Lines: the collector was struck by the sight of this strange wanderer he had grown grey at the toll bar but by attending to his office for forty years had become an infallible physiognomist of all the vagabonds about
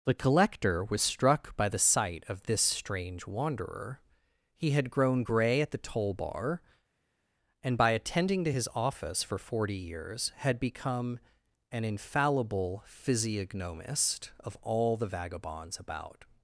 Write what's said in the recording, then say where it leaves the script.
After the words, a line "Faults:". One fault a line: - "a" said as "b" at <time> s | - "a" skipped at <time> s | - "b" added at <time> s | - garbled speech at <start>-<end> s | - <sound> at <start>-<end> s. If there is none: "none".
the collector was struck by the sight of this strange wanderer he had grown grey at the toll bar and by attending to his office for forty years had become an infallible physiognomist of all the vagabonds about
Faults:
- "but" said as "and" at 7.6 s